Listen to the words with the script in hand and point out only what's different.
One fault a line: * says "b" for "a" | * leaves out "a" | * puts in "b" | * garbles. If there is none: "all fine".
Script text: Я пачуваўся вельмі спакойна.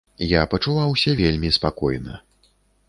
all fine